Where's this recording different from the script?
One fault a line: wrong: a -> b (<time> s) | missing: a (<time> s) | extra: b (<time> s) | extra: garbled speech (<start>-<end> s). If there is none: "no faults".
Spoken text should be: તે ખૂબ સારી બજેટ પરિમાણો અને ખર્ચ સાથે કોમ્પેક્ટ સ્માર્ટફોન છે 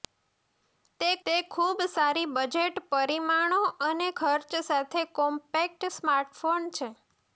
extra: તે (1.2 s)